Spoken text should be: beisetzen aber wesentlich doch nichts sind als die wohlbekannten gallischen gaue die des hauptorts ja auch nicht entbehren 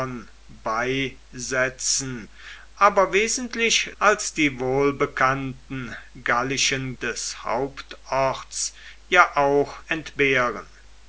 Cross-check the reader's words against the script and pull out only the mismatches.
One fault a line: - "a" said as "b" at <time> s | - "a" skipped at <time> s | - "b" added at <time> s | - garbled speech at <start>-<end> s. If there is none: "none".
- "doch nichts sind" skipped at 3.9 s
- "gaue die" skipped at 6.9 s
- "nicht" skipped at 9.8 s